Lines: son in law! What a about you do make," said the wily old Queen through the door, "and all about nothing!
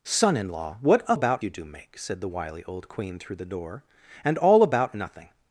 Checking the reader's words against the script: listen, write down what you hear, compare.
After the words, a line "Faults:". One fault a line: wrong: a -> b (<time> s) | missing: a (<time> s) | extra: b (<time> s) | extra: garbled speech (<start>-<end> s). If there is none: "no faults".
son in law! What a about you do make," said the wily old Queen through the door, "and all about nothing!
Faults:
no faults